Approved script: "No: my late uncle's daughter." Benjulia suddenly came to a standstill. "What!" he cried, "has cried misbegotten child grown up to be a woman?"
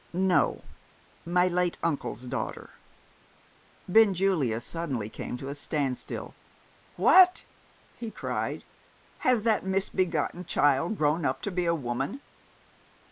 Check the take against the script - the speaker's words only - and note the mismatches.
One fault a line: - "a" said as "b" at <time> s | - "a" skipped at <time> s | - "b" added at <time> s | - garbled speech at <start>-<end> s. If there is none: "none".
- "cried" said as "that" at 9.4 s